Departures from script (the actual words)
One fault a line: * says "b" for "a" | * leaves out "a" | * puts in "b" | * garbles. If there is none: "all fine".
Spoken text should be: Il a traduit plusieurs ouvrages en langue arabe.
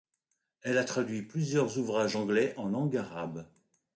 * says "Elle" for "Il"
* puts in "anglais"